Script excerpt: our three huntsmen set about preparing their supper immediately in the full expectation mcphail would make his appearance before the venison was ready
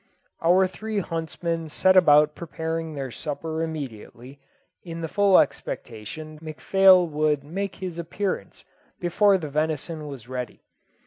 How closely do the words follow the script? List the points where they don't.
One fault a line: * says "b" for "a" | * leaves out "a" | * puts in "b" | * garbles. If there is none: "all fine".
all fine